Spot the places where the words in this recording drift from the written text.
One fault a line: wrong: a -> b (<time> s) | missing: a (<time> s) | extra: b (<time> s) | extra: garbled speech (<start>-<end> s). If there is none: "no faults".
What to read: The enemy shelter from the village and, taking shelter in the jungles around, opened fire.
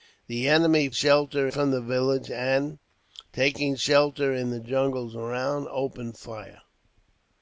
no faults